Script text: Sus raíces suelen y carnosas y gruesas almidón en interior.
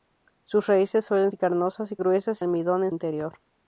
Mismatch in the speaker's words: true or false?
false